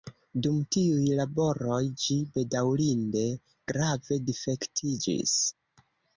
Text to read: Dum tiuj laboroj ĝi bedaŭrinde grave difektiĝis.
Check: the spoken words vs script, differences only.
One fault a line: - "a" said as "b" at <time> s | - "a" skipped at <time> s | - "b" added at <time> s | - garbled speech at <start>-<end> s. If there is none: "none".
none